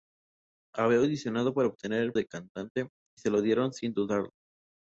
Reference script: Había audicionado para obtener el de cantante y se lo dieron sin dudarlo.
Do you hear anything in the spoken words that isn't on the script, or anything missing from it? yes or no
no